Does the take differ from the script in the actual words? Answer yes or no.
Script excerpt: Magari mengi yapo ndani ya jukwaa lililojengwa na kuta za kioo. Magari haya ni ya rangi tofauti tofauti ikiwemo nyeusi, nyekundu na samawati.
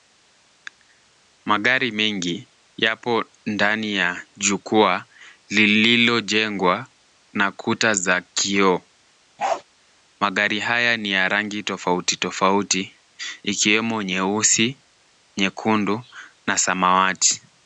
no